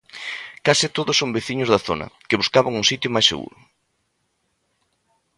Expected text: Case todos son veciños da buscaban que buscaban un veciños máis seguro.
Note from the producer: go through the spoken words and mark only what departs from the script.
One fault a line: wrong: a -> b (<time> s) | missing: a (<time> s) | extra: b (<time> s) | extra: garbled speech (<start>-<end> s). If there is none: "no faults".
wrong: buscaban -> zona (1.9 s)
wrong: veciños -> sitio (2.9 s)